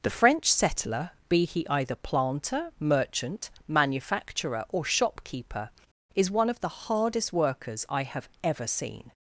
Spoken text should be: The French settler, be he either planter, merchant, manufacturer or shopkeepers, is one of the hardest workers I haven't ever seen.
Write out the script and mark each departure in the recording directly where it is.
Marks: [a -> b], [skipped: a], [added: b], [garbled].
The French settler, be he either planter, merchant, manufacturer or [shopkeepers, -> shopkeeper] is one of the hardest workers I [haven't -> have] ever seen.